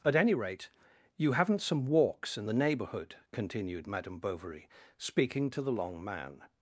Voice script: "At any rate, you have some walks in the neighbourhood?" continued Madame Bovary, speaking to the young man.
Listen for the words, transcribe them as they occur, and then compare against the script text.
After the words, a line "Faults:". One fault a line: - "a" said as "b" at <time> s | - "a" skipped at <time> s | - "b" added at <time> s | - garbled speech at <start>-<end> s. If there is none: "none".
"At any rate, you haven't some walks in the neighbourhood?" continued Madame Bovary, speaking to the long man.
Faults:
- "have" said as "haven't" at 1.3 s
- "young" said as "long" at 5.7 s